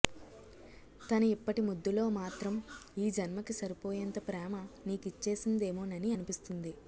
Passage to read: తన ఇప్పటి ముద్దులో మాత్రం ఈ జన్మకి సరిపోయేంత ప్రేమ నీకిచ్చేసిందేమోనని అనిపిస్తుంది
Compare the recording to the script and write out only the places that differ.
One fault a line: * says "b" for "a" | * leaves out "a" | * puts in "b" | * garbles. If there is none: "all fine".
all fine